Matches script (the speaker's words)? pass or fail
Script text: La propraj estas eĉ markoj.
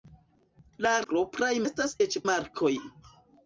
pass